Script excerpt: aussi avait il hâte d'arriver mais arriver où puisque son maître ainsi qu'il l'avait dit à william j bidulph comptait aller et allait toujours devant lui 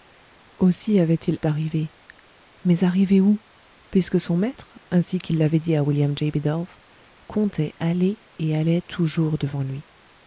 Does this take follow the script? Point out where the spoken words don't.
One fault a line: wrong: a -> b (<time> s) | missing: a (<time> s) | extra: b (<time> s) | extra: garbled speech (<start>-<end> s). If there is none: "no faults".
missing: hâte (1.4 s)